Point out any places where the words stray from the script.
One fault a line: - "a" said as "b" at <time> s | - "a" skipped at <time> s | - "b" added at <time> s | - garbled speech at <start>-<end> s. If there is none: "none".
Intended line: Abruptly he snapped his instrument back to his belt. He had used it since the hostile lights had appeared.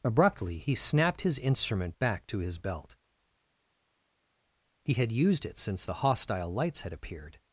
none